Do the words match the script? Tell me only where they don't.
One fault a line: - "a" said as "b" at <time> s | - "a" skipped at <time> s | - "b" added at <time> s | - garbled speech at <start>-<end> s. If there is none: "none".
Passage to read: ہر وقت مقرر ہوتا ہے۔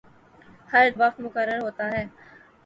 none